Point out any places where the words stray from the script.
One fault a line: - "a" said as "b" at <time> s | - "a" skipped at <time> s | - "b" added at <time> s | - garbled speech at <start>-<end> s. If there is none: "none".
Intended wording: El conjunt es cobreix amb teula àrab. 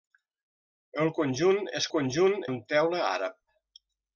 - "cobreix" said as "conjunt" at 1.9 s